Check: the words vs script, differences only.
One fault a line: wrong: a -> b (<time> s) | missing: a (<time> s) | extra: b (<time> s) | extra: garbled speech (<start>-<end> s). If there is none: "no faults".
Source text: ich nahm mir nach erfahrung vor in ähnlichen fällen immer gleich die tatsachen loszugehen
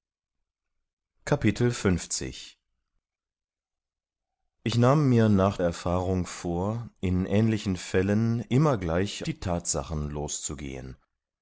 no faults